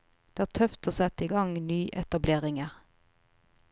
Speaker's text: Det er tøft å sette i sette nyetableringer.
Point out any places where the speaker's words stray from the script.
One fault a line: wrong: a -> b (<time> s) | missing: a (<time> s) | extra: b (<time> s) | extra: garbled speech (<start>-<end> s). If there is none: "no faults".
wrong: sette -> gang (1.3 s)